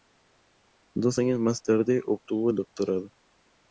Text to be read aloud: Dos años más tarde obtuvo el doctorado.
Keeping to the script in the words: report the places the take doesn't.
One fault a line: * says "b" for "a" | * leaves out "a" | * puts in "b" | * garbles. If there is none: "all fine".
all fine